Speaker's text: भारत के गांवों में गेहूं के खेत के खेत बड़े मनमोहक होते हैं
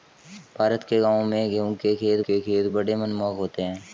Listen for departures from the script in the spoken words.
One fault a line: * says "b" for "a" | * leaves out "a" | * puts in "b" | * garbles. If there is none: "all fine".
all fine